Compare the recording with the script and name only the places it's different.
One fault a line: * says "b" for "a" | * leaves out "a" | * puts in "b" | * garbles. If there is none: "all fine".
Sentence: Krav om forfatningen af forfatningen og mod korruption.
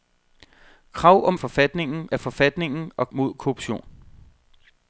all fine